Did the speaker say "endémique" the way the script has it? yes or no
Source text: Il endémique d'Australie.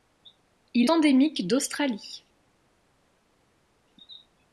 yes